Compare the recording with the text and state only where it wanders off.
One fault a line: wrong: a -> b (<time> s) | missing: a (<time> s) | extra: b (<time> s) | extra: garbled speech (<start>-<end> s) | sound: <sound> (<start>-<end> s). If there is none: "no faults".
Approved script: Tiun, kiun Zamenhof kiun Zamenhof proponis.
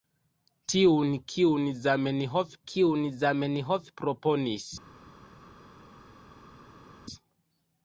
no faults